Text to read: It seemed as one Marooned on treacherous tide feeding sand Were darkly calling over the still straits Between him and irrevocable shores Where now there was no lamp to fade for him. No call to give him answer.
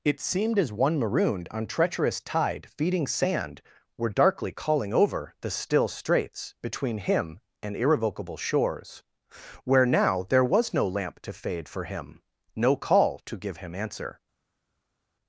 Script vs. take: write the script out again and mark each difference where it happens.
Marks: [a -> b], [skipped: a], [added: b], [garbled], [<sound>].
It seemed as one Marooned on treacherous tide feeding sand Were darkly calling over the still straits Between him and irrevocable shores Where now there was no lamp to fade for him. No call to give him answer.